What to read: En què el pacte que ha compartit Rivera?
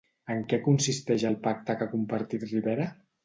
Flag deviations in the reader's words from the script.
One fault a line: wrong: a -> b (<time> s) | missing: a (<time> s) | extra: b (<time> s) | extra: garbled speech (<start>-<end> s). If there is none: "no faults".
extra: consisteix (0.7 s)